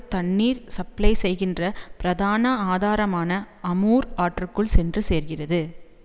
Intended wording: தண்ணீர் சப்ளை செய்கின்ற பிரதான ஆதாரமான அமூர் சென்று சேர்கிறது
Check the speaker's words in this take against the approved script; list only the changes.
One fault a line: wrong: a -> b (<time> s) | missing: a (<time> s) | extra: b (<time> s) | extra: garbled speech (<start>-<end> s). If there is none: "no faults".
extra: ஆற்றுக்குள் (4.2 s)